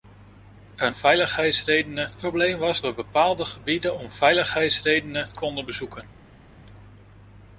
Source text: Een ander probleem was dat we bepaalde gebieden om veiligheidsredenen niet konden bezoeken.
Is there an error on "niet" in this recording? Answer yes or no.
yes